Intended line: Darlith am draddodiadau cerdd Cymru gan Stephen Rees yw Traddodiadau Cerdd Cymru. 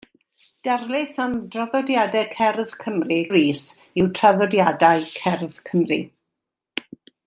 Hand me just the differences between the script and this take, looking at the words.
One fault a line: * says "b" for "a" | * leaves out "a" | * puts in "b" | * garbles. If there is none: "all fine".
* leaves out "gan Stephen"